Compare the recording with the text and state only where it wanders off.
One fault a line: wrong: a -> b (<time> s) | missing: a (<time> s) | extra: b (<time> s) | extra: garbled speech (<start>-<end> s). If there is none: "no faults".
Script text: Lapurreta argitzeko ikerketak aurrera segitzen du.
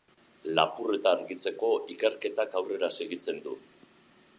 no faults